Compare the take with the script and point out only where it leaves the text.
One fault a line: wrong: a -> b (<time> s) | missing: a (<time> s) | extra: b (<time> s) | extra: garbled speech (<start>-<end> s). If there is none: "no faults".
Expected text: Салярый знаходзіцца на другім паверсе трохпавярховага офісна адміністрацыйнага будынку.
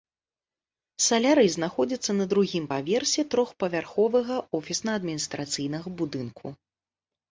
no faults